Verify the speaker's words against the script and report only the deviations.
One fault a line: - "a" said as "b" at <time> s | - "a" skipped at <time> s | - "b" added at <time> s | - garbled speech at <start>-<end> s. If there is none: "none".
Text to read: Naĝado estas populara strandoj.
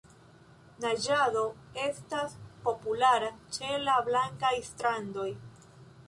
- "ĉe la blankaj" added at 3.6 s